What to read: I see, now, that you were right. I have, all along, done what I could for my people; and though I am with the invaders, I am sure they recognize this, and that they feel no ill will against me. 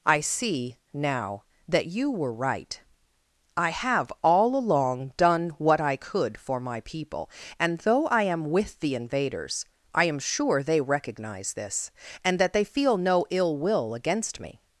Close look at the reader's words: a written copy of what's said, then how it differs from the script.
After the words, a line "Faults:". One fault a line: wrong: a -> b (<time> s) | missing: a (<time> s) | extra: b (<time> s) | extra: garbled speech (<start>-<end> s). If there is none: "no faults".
I see, now, that you were right. I have, all along, done what I could for my people; and though I am with the invaders, I am sure they recognize this, and that they feel no ill will against me.
Faults:
no faults